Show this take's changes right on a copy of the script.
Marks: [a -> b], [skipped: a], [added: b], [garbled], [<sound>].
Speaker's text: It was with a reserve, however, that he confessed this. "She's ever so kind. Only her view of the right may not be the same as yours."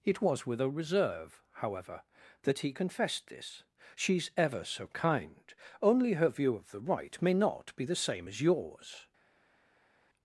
It was with a reserve, however, that he confessed this. "She's ever so kind. Only her view of the right may not be the same as yours."